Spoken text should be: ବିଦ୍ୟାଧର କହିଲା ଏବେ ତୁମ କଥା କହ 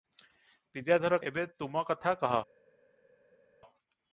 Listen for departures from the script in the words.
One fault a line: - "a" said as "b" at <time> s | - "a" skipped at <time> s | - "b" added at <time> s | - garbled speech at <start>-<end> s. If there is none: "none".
- "କହିଲା" skipped at 1.2 s